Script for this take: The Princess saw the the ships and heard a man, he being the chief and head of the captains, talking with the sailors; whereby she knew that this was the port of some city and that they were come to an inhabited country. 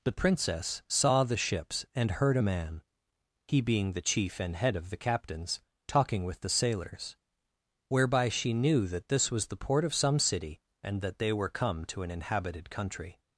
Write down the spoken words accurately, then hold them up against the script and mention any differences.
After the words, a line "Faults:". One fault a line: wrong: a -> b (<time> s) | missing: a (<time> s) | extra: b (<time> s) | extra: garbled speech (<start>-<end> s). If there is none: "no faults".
The Princess saw the ships and heard a man, he being the chief and head of the captains, talking with the sailors; whereby she knew that this was the port of some city and that they were come to an inhabited country.
Faults:
missing: the (1.4 s)